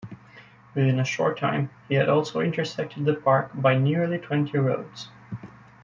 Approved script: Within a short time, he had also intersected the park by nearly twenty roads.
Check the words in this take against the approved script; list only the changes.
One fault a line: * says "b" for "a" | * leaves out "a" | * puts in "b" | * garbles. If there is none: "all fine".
all fine